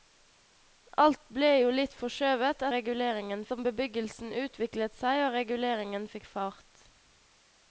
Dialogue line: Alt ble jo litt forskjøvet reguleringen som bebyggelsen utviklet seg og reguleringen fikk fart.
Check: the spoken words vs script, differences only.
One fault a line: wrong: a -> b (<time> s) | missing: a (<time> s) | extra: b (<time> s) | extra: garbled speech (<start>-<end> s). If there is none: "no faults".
no faults